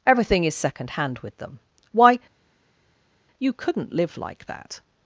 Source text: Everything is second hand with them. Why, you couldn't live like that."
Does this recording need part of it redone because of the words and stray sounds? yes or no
no